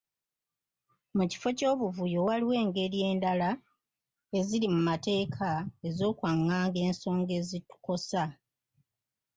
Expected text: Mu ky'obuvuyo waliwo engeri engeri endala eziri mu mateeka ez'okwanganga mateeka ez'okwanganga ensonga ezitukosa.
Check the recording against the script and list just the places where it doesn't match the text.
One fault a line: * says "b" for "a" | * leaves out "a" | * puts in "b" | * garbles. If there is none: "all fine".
* puts in "kifo"
* leaves out "engeri"
* leaves out "mateeka ez'okwanganga"